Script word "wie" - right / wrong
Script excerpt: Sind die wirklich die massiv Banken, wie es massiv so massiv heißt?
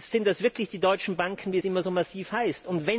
right